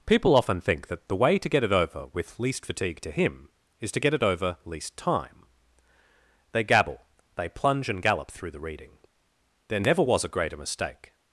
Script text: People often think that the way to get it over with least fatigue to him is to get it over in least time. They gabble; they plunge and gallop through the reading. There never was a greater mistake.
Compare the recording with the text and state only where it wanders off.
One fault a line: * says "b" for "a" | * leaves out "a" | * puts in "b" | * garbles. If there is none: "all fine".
* leaves out "in"